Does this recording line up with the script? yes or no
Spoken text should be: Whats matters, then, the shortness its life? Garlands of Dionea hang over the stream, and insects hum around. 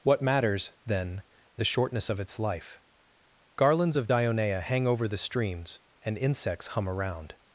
no